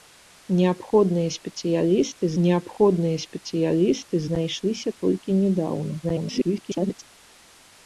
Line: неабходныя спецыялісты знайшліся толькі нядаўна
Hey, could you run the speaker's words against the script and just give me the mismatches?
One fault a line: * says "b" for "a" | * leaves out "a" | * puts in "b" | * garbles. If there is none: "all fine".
* puts in "неабходныя спецыялісты"
* garbles